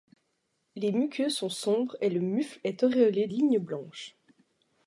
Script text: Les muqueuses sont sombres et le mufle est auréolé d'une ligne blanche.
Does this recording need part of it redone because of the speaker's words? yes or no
yes